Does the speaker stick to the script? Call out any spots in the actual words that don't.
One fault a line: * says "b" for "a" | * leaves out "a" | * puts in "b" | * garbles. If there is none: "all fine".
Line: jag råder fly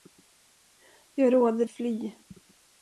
all fine